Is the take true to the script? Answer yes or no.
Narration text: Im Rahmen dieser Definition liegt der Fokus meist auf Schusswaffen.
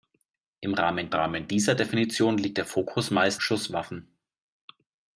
no